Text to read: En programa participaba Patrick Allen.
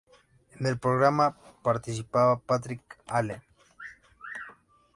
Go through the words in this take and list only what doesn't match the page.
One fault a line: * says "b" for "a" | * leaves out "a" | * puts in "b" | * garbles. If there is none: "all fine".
* puts in "el"